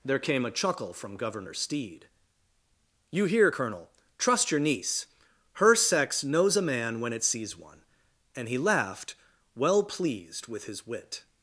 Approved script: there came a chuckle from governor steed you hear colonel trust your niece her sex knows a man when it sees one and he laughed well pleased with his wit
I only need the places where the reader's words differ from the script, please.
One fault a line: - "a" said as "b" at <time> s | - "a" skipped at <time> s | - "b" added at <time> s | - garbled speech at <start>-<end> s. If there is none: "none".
none